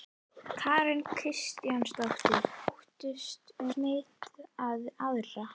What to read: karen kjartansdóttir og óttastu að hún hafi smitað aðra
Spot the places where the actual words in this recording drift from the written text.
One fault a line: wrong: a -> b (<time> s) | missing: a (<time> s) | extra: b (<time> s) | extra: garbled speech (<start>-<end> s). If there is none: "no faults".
missing: og (2.5 s)
missing: hún hafi (3.7 s)